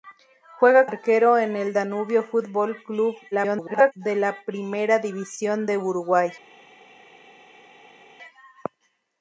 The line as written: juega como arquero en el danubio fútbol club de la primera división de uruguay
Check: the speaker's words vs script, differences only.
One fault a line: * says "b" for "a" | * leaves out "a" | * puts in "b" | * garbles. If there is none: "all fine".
* leaves out "como"
* garbles